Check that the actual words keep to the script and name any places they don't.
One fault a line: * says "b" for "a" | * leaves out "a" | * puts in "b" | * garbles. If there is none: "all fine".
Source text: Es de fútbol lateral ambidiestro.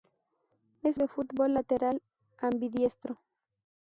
all fine